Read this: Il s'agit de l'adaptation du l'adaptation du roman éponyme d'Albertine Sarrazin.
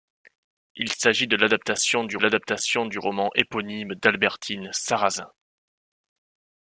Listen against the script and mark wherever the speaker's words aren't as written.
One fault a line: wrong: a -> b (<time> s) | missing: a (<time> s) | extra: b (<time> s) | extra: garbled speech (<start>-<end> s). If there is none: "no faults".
no faults